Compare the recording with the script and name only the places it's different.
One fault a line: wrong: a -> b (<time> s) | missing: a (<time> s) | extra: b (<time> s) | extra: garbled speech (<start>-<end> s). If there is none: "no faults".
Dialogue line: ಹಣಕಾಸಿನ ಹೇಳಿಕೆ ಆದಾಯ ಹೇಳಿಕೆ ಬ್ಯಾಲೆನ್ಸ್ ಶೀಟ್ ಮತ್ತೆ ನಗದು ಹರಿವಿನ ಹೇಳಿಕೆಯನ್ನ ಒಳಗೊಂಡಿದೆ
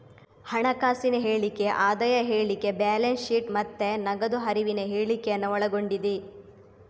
no faults